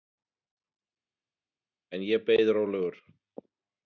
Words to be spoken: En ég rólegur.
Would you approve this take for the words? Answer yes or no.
no